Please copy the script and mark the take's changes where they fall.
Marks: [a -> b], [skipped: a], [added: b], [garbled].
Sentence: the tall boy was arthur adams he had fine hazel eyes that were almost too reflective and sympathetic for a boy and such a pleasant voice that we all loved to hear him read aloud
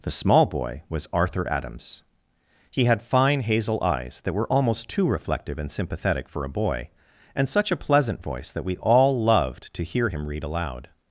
the [tall -> small] boy was arthur adams he had fine hazel eyes that were almost too reflective and sympathetic for a boy and such a pleasant voice that we all loved to hear him read aloud